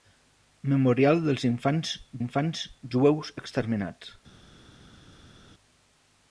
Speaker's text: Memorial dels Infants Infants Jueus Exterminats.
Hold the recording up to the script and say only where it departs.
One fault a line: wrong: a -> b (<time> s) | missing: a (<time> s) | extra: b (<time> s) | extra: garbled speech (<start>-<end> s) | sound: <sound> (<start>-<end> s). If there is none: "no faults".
no faults